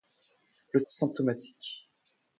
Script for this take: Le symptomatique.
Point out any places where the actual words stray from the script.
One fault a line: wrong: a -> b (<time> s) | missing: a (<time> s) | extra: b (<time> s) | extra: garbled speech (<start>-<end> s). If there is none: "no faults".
no faults